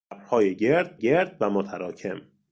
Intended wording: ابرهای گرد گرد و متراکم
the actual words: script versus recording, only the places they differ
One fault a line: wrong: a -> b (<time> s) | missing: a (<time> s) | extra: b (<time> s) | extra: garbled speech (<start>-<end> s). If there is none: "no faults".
no faults